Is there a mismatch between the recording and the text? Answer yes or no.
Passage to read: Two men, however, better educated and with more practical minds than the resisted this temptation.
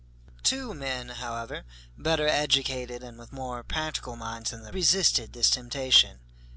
no